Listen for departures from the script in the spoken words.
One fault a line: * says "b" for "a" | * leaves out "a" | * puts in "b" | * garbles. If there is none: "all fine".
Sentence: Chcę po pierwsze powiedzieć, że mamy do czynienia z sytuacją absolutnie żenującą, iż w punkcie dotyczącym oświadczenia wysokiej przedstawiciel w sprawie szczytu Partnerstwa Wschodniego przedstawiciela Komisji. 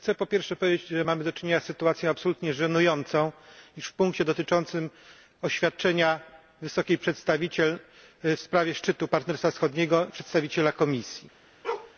all fine